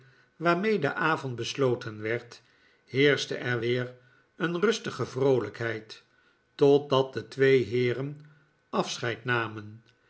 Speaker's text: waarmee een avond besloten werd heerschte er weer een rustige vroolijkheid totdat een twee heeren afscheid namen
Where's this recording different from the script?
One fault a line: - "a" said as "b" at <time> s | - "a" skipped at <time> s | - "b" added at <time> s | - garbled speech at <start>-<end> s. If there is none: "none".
- "een" said as "de" at 0.8 s
- "een" said as "de" at 7.1 s